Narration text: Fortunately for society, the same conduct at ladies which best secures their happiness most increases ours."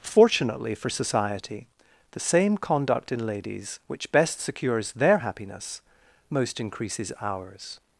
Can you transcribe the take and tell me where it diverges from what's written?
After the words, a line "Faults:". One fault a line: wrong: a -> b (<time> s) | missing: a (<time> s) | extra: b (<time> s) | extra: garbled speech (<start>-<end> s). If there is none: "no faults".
Fortunately for society, the same conduct in ladies which best secures their happiness most increases ours."
Faults:
wrong: at -> in (3.1 s)